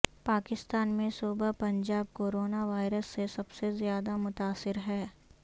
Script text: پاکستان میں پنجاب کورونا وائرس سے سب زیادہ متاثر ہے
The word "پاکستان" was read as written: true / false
true